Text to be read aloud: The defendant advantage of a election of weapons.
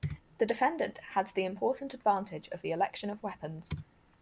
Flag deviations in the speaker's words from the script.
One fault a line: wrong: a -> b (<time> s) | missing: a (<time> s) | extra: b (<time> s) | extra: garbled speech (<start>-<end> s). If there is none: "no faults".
extra: had the important (1.0 s)
wrong: a -> the (2.6 s)